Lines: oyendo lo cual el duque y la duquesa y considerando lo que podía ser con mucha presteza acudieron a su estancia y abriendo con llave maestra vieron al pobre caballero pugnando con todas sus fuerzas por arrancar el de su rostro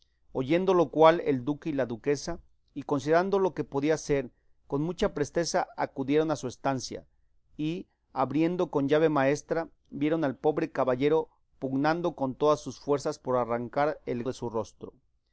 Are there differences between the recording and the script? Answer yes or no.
no